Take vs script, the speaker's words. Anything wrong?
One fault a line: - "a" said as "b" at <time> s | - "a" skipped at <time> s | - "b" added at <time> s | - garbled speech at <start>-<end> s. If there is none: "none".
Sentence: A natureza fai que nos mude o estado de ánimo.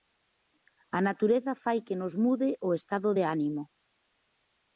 none